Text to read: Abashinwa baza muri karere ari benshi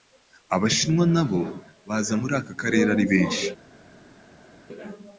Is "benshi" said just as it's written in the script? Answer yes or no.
yes